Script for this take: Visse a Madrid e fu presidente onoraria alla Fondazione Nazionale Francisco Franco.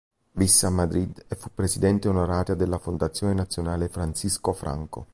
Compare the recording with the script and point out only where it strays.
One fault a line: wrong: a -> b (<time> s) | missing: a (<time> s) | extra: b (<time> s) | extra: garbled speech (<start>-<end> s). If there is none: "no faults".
wrong: alla -> della (2.5 s)